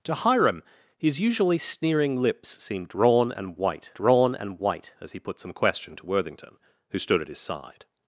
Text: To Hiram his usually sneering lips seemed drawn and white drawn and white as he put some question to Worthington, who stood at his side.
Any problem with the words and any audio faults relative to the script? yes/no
no